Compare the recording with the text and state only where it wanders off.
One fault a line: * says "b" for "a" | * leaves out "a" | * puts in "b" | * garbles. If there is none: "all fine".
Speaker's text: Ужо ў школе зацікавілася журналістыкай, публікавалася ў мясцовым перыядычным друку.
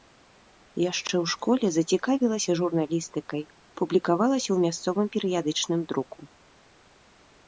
* says "Яшчэ" for "Ужо"